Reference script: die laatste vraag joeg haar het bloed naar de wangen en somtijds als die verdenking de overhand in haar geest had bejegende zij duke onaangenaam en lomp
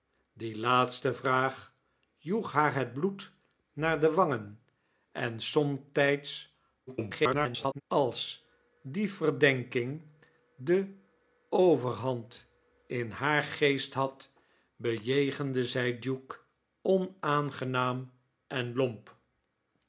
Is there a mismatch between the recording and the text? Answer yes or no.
yes